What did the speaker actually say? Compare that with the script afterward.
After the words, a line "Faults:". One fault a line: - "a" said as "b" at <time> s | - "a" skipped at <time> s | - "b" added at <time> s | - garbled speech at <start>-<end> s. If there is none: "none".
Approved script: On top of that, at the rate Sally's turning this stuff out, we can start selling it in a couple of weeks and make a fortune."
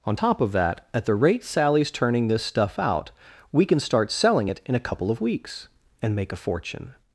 On top of that, at the rate Sally's turning this stuff out, we can start selling it in a couple of weeks and make a fortune."
Faults:
none